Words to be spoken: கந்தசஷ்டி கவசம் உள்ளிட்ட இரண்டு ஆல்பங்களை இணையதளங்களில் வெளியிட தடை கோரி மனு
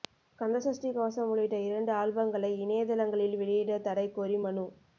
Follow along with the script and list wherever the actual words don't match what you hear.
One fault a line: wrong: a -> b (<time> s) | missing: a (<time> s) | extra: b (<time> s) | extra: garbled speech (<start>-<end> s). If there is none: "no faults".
no faults